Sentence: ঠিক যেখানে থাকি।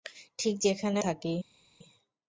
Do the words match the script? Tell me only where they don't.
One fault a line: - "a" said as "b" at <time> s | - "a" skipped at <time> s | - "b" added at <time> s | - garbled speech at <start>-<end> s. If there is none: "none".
none